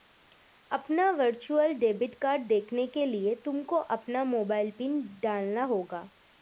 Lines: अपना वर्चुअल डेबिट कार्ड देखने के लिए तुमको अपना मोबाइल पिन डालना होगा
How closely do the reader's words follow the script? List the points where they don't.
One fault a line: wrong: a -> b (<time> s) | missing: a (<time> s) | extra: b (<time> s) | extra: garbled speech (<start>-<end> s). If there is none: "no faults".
no faults